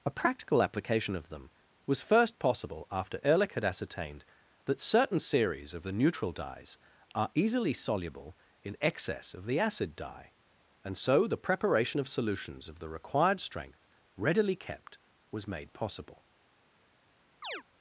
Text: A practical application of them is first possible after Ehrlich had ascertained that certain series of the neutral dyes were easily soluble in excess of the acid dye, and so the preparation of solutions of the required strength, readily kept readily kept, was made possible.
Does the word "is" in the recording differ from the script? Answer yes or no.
yes